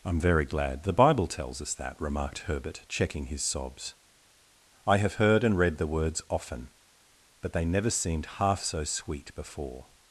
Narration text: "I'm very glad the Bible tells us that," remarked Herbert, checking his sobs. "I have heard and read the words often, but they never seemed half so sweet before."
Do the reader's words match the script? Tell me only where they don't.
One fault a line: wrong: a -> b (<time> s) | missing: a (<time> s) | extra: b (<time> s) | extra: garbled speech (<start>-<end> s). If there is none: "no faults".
no faults